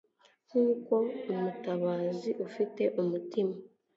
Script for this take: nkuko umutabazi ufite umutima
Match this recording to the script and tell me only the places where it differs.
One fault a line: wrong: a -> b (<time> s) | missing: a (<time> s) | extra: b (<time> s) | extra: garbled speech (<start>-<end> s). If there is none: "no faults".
no faults